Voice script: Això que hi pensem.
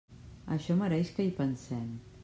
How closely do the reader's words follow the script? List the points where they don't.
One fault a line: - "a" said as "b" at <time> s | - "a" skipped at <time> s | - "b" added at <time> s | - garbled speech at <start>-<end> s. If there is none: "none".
- "mereix" added at 0.8 s